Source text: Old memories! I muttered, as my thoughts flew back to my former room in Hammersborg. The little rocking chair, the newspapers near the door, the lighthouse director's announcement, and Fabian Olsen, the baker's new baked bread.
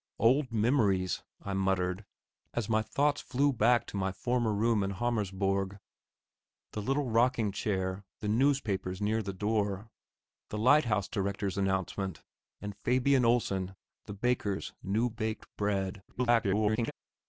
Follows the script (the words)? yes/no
no